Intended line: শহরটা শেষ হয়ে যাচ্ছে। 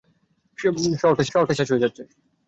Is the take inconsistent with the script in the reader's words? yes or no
yes